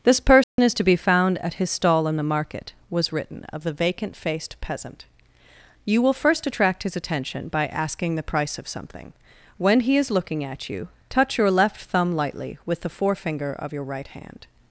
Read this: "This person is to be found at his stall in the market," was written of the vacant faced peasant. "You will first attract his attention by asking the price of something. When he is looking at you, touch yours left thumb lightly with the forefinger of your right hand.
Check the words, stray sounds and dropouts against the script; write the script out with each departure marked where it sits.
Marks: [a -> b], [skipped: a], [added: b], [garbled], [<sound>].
"This person [dropout] is to be found at his stall in the market," was written of the vacant faced peasant. "You will first attract his attention by asking the price of something. When he is looking at you, touch [yours -> your] left thumb lightly with the forefinger of your right hand.